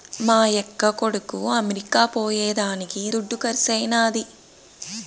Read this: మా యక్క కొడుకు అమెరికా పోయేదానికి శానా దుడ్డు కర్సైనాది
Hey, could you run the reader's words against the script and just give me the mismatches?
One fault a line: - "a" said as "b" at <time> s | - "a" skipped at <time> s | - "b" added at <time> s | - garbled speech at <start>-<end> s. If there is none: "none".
- "శానా" skipped at 3.0 s